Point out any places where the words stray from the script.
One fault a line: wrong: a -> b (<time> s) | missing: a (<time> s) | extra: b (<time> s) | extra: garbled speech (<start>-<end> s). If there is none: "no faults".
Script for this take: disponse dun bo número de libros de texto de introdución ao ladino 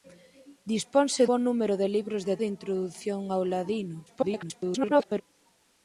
missing: dun (1.2 s)
missing: texto (2.4 s)
extra: garbled speech (4.1-5.2 s)